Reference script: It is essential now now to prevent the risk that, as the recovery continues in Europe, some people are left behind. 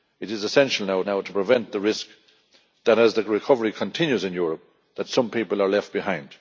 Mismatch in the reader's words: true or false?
false